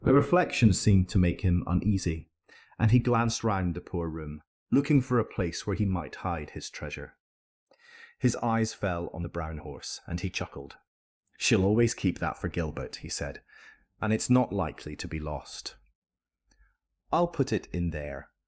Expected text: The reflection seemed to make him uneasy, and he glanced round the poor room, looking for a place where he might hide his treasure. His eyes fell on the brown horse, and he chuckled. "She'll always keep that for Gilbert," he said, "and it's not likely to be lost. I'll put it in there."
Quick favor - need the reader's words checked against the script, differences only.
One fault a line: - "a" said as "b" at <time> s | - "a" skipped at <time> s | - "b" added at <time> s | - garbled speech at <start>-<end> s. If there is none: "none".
none